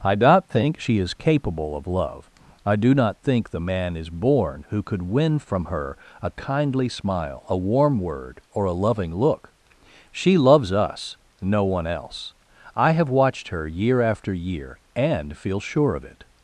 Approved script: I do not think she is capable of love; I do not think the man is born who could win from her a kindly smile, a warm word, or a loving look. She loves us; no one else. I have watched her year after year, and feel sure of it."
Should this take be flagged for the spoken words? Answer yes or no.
no